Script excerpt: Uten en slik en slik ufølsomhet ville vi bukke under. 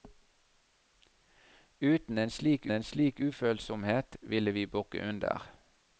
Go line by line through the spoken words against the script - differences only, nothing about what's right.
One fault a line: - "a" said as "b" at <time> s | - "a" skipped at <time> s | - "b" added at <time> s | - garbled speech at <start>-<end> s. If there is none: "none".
none